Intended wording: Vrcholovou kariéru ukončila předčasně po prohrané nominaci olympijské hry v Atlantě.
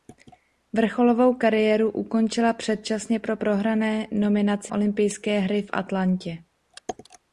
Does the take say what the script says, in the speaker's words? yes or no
yes